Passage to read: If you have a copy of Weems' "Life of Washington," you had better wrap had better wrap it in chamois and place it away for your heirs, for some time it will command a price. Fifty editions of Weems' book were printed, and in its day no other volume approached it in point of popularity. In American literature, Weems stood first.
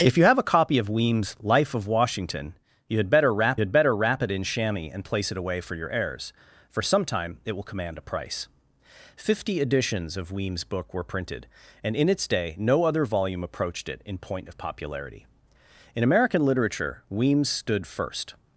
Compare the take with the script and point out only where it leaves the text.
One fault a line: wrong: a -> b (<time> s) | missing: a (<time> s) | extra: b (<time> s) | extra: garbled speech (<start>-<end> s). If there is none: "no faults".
no faults